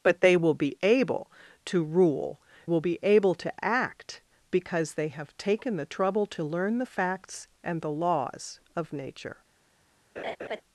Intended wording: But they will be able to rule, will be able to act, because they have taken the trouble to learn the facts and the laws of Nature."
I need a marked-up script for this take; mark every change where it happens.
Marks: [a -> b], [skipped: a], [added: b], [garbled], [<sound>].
But they will be able to rule, will be able to act, because they have taken the trouble to learn the facts and the laws of Nature." [laugh]